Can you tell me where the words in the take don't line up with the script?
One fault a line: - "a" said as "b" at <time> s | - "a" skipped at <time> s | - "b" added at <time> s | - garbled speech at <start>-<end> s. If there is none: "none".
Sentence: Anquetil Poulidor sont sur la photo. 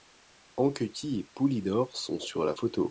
- "et" added at 1.2 s